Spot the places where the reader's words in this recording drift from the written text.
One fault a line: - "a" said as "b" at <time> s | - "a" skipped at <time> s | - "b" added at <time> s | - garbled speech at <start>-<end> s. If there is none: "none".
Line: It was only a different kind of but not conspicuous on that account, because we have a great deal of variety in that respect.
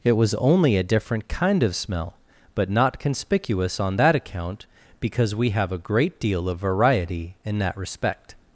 - "smell" added at 1.8 s